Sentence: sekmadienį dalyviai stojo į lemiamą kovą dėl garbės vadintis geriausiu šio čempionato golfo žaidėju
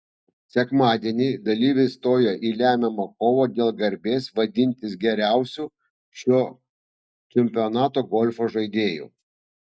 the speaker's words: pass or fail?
pass